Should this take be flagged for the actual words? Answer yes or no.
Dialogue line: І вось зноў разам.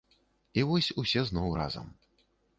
yes